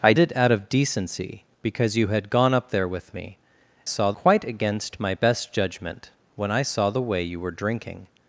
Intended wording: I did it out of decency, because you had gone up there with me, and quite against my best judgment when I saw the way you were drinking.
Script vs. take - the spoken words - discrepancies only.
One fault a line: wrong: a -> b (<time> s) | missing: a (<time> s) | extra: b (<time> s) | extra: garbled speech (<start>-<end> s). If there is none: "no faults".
missing: did (0.1 s)
wrong: and -> saw (3.8 s)